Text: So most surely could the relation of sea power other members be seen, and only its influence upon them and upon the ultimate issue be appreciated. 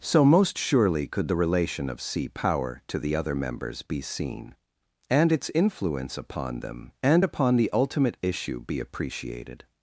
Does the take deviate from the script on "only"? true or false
true